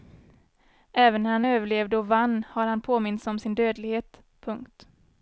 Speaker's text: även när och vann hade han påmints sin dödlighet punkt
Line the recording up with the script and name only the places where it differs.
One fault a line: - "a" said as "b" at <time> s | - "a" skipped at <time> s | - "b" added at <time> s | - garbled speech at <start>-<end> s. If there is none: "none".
- "han överlevde" added at 1.3 s
- "hade" said as "har" at 2.5 s
- "om" added at 3.3 s